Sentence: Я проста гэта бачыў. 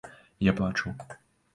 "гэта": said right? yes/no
no